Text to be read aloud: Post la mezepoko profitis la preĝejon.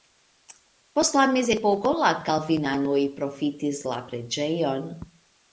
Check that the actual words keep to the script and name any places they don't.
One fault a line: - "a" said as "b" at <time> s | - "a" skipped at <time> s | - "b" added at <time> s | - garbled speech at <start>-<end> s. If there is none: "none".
- "la kalvinanoj" added at 2.0 s